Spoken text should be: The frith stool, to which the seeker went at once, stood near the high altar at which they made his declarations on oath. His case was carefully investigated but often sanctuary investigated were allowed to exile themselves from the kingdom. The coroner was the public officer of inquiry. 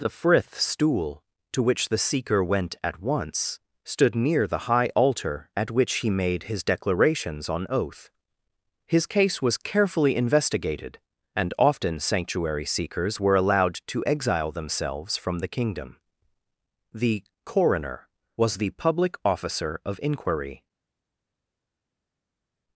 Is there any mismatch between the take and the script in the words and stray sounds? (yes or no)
yes